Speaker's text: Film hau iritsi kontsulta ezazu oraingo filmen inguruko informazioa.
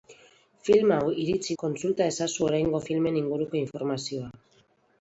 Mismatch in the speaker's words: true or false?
false